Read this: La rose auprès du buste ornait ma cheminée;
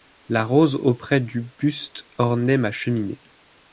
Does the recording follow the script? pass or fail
pass